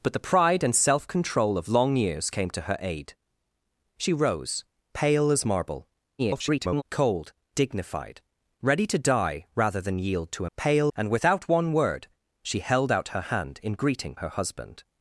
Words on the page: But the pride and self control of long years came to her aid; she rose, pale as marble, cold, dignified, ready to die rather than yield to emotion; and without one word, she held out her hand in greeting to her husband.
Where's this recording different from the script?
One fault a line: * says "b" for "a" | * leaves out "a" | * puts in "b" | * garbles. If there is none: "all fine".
* garbles
* says "pale" for "emotion"
* leaves out "to"